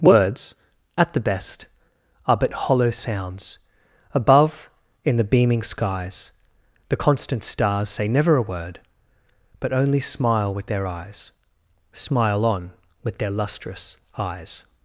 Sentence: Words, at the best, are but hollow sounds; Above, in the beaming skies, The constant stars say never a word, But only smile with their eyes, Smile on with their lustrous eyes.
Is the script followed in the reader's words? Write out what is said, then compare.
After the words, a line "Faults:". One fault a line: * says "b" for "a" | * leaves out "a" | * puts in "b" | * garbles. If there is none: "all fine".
Words, at the best, are but hollow sounds; Above, in the beaming skies, The constant stars say never a word, But only smile with their eyes, Smile on with their lustrous eyes.
Faults:
all fine